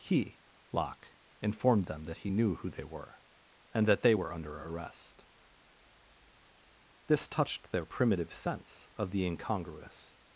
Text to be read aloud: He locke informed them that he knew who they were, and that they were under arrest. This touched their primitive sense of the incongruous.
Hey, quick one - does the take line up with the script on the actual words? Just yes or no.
yes